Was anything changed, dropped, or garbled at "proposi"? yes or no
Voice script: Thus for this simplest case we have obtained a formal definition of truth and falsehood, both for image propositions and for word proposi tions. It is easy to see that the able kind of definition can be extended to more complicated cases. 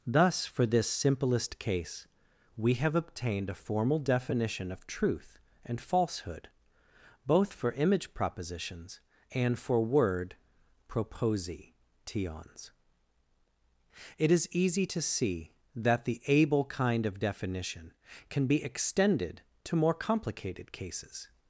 no